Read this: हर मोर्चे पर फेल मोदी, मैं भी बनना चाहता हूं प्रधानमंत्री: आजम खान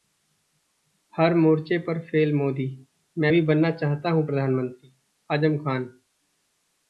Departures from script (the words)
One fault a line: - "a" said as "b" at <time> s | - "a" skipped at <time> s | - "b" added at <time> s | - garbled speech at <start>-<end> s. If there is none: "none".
none